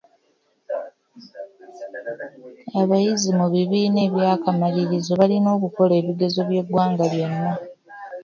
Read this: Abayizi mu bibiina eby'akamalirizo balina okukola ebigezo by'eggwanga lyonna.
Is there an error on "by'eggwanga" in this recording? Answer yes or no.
no